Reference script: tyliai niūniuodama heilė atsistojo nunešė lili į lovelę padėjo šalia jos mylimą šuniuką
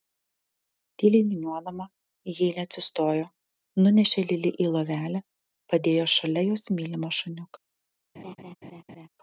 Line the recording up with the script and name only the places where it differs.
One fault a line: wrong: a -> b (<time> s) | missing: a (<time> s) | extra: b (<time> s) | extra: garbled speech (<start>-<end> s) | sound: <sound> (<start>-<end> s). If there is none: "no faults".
sound: laugh (8.1-9.1 s)